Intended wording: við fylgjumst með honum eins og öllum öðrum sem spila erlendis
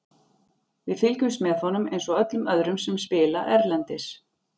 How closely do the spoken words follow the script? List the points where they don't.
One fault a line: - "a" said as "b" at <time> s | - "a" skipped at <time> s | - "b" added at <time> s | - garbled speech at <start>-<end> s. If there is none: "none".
none